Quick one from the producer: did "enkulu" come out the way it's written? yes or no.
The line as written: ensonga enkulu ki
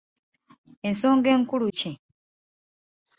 yes